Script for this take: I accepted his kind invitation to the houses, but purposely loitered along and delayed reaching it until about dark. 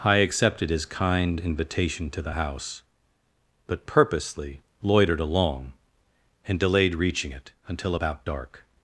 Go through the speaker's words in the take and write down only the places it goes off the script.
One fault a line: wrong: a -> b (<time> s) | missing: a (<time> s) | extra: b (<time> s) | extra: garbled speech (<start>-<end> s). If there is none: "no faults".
wrong: houses -> house (2.3 s)